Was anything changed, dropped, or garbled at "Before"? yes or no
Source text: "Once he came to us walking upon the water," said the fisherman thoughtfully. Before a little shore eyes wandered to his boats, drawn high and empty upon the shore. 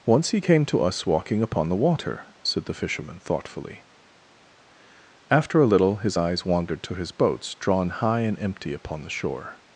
yes